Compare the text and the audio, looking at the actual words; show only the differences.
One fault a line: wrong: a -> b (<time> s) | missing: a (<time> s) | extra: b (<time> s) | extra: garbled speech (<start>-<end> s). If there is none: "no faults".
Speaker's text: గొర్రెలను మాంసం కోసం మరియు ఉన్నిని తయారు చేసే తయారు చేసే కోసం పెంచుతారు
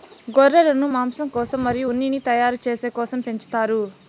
missing: తయారు చేసే (2.9 s)